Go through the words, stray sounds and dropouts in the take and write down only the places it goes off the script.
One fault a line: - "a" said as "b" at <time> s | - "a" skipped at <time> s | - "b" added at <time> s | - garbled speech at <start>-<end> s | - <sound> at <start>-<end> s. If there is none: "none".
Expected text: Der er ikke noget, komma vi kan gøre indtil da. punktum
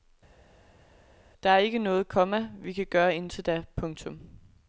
none